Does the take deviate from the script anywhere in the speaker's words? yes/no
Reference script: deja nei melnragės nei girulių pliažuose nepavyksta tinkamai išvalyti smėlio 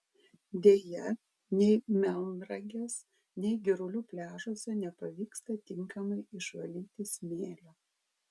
no